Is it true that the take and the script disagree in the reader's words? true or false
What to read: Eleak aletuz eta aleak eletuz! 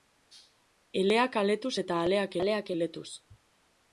true